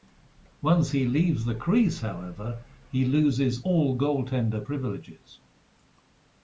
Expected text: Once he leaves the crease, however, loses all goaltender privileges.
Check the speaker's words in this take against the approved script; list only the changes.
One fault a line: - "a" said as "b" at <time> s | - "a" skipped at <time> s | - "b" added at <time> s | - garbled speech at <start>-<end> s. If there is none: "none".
- "he" added at 2.9 s